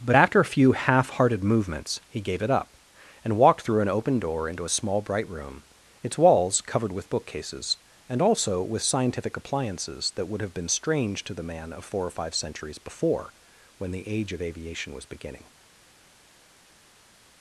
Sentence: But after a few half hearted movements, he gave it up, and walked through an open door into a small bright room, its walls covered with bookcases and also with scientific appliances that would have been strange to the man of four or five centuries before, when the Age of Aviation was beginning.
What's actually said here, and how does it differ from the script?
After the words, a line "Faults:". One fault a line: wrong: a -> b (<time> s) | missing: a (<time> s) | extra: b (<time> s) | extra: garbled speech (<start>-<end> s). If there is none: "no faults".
But after a few half hearted movements, he gave it up, and walked through an open door into a small bright room, its walls covered with bookcases and also with scientific appliances that would have been strange to the man of four or five centuries before, when the Age of Aviation was beginning.
Faults:
no faults